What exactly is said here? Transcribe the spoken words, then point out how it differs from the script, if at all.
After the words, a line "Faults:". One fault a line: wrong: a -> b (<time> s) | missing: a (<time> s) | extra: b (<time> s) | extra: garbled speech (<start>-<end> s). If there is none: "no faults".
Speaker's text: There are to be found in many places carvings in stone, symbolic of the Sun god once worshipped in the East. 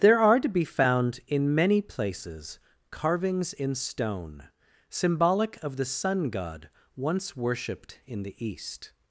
There are to be found in many places carvings in stone, symbolic of the Sun god once worshipped in the East.
Faults:
no faults